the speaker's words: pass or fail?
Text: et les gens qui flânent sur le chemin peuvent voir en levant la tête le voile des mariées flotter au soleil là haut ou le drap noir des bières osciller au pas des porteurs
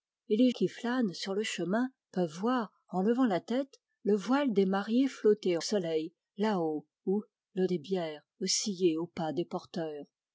fail